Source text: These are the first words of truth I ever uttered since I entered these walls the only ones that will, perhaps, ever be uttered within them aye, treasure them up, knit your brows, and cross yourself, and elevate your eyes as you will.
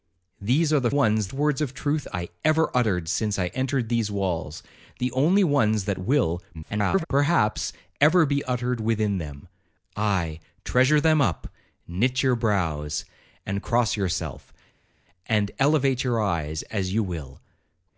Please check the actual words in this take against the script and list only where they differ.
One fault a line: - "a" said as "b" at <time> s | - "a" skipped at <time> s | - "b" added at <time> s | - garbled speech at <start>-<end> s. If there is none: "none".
- "first" said as "ones" at 0.9 s
- garbled speech at 6.5-7.1 s